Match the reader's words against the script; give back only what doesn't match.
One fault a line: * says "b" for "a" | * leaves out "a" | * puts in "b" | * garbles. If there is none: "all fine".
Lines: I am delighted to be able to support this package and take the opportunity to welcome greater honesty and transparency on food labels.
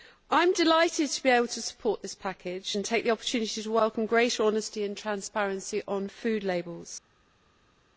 all fine